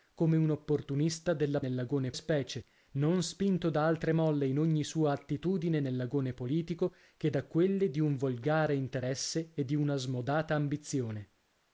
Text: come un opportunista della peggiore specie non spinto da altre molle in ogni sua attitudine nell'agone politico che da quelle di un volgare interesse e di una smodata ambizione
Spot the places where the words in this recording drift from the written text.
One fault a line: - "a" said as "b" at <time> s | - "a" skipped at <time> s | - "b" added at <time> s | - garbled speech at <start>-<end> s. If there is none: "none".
- "peggiore" said as "nell'agone" at 1.6 s